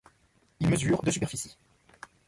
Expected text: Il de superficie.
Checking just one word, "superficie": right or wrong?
right